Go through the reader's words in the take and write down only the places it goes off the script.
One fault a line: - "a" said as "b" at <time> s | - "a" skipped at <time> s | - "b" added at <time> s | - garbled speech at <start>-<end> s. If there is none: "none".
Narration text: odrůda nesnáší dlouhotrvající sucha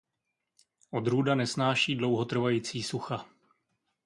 none